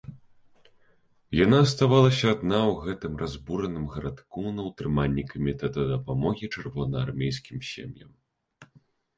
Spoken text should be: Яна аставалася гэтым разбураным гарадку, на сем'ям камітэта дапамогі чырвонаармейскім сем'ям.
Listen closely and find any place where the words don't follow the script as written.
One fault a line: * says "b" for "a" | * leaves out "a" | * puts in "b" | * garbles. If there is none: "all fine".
* puts in "адна ў"
* says "ўтрыманні" for "сем'ям"